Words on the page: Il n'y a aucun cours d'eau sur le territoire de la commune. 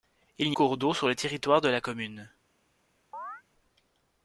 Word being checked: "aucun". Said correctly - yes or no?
no